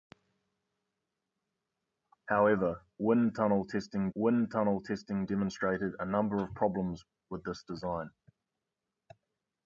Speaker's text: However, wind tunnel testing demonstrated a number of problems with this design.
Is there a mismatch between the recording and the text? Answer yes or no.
yes